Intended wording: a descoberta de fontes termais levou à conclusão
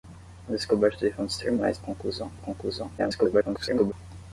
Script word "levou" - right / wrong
wrong